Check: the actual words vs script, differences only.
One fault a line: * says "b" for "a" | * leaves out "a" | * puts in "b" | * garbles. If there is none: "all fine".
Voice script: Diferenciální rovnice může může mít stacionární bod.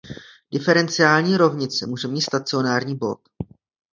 * leaves out "může"